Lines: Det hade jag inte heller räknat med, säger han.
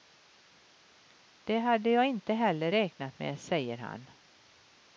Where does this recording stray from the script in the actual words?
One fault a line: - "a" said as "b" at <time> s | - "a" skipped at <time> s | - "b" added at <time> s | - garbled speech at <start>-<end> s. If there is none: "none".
none